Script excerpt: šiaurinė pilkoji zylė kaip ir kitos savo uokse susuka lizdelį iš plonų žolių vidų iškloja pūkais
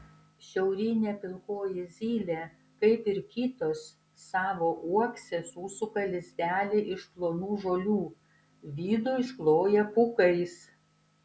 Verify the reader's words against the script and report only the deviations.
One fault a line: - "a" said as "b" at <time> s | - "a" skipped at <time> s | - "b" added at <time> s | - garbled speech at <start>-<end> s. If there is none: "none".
none